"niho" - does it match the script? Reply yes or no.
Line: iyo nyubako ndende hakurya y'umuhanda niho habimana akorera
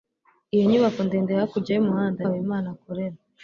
no